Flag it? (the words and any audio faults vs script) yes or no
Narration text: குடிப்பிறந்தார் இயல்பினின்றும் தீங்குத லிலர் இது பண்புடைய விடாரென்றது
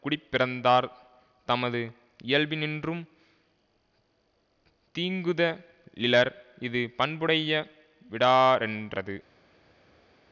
yes